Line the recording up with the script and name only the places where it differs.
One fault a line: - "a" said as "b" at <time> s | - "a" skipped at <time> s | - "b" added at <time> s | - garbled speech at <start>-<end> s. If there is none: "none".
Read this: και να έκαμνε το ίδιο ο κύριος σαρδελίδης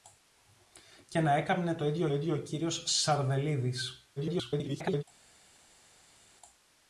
- "ίδιο" added at 2.1 s
- garbled speech at 4.2-5.0 s